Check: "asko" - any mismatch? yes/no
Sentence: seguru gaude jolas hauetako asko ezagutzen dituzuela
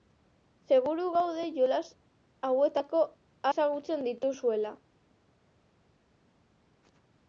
yes